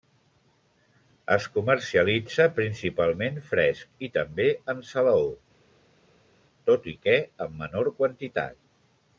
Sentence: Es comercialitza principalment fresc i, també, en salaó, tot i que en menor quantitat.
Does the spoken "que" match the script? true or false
true